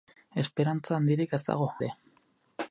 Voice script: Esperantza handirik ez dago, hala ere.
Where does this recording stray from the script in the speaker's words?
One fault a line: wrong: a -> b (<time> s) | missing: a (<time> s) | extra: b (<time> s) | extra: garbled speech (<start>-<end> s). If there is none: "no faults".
missing: hala (1.7 s)